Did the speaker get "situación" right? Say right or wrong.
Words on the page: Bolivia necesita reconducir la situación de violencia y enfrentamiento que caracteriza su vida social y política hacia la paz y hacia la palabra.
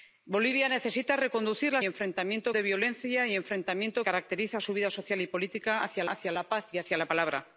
wrong